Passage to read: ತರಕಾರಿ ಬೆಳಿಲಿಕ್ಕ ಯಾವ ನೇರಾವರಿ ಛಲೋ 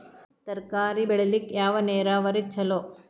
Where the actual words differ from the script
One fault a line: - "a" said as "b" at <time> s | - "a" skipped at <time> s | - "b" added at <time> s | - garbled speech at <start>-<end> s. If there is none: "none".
none